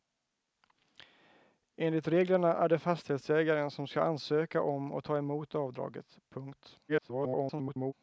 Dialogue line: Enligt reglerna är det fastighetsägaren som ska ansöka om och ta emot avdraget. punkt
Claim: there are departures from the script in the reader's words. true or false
true